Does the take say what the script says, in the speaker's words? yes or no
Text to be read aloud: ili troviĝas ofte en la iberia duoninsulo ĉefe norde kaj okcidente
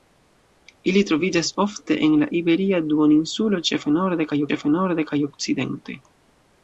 no